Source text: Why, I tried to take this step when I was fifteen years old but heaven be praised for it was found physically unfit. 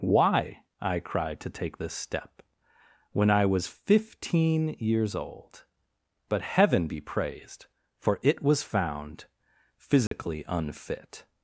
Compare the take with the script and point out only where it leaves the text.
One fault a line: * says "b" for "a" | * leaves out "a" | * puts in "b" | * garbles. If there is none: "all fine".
* says "cried" for "tried"